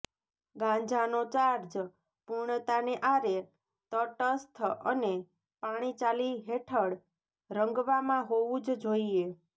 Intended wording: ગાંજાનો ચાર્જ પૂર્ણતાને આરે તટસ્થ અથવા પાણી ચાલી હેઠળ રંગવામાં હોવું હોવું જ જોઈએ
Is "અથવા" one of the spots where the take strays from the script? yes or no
yes